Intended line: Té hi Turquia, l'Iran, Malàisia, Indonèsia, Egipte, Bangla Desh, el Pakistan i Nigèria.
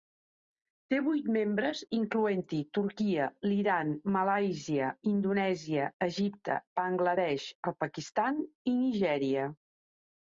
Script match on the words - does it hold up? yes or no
no